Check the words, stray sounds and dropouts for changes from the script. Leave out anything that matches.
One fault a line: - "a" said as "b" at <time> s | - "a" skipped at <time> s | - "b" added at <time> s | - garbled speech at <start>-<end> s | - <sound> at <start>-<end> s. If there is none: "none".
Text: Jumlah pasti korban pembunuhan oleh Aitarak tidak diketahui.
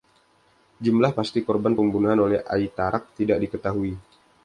none